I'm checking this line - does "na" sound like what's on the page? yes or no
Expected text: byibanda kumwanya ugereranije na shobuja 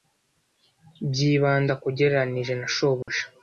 yes